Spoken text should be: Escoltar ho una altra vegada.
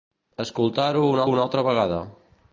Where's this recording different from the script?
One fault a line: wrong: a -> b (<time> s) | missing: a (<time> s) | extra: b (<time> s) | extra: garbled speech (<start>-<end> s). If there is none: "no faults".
extra: una (1.3 s)